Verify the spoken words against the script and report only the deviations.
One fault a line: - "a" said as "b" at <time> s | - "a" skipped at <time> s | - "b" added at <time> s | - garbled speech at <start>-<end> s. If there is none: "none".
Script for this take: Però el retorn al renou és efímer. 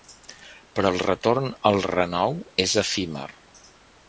none